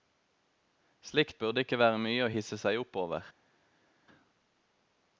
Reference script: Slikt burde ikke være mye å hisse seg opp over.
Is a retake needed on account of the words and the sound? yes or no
no